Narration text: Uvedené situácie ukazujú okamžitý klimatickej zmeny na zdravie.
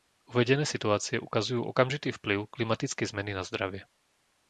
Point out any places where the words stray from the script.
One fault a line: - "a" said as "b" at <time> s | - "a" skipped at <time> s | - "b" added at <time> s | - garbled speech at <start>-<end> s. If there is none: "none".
- "vplyv" added at 2.1 s